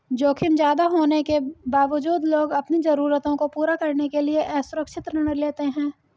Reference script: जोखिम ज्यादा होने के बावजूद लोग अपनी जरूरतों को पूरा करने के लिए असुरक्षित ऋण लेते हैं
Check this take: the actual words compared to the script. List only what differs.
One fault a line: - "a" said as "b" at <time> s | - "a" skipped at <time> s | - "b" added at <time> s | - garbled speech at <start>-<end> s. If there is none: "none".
none